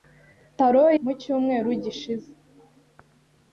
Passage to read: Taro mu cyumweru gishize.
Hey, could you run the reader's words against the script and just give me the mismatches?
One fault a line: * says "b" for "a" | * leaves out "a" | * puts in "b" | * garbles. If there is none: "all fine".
all fine